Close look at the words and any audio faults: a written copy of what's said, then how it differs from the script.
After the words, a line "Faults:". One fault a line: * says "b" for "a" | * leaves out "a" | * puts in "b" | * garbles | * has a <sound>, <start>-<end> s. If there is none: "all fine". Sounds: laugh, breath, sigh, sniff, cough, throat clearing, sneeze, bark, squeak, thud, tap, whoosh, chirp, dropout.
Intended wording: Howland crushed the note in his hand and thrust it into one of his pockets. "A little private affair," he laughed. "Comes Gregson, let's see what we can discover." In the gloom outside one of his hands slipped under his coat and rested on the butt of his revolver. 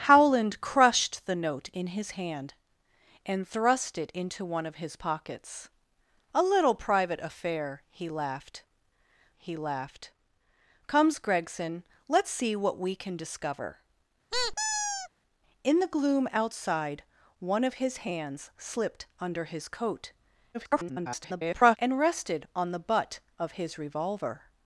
Howland crushed the note in his hand and thrust it into one of his pockets. "A little private affair," he laughed he laughed. "Comes Gregson, let's see what we can discover." In the gloom outside one of his hands slipped under his coat [garbled] and rested on the butt of his revolver.
Faults:
* puts in "he laughed"
* has a squeak, 14.3-15.1 s
* garbles